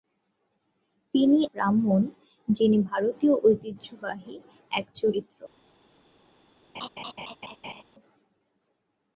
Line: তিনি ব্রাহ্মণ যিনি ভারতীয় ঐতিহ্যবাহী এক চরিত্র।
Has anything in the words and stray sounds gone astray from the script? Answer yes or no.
yes